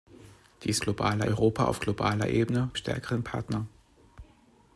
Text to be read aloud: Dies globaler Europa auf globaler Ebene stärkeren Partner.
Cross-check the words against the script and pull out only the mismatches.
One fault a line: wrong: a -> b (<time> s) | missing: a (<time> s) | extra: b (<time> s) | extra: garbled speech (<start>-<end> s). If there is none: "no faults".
no faults